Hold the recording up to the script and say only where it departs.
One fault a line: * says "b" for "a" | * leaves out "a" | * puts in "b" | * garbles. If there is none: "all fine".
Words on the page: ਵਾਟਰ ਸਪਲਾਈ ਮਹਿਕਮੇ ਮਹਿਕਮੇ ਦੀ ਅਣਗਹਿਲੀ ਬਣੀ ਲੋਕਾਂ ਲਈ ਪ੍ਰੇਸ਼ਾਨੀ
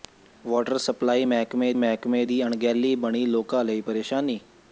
all fine